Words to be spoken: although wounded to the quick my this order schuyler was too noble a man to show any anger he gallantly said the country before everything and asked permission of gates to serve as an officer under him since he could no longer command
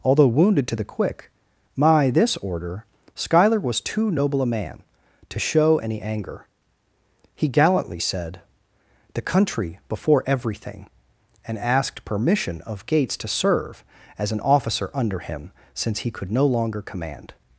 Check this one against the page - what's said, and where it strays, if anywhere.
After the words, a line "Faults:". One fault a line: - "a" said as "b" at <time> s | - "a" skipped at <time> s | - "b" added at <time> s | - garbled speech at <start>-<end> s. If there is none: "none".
although wounded to the quick my this order schuyler was too noble a man to show any anger he gallantly said the country before everything and asked permission of gates to serve as an officer under him since he could no longer command
Faults:
none